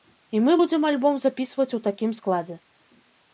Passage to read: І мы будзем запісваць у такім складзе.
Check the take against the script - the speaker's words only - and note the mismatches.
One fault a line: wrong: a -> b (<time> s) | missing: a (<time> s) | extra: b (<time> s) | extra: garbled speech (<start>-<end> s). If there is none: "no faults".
extra: альбом (0.9 s)